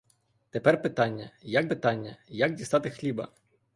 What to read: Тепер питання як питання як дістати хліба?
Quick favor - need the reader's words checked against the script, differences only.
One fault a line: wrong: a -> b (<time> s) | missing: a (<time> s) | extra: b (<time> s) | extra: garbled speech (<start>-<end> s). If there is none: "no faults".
no faults